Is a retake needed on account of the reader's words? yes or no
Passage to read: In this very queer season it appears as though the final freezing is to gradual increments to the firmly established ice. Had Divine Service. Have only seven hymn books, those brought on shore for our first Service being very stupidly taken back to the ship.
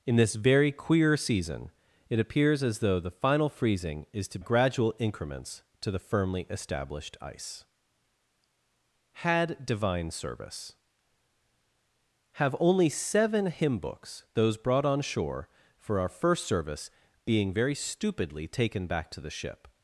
no